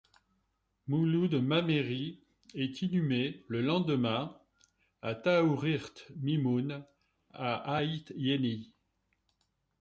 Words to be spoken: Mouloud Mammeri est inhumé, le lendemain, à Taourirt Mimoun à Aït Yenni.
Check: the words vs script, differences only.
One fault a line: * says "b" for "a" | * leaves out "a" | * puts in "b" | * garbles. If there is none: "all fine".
all fine